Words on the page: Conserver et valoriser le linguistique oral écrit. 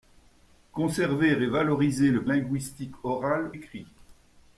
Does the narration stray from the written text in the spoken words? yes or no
no